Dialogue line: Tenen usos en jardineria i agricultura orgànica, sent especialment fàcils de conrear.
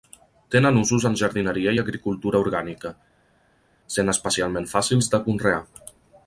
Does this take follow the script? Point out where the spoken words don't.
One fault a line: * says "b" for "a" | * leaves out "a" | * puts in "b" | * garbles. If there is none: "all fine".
all fine